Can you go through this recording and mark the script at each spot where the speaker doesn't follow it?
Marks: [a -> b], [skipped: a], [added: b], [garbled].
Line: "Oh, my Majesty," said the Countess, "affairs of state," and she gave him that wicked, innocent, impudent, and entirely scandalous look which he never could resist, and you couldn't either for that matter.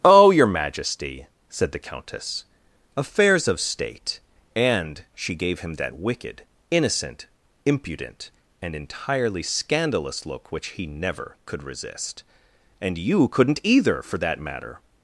"Oh, [my -> your] Majesty," said the Countess, "affairs of state," and she gave him that wicked, innocent, impudent, and entirely scandalous look which he never could resist, and you couldn't either for that matter.